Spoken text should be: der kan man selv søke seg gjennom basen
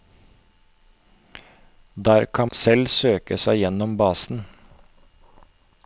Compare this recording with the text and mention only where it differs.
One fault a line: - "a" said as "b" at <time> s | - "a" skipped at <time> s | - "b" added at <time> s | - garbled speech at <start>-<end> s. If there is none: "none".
- "man" skipped at 2.5 s